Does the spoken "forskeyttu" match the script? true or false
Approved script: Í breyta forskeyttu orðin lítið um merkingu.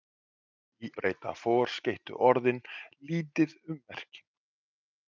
true